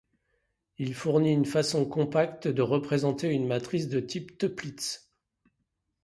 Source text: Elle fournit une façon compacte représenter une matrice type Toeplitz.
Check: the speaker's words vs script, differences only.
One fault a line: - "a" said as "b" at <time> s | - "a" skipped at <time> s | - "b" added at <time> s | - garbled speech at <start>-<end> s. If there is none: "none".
- "Elle" said as "Il" at 0.8 s
- "de" added at 2.5 s
- "de" added at 3.9 s